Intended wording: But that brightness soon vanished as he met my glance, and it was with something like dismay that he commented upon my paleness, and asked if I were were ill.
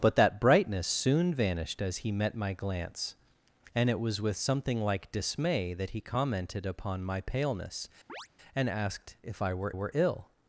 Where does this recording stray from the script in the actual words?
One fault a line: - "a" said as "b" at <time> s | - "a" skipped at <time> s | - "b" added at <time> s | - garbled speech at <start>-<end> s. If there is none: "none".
none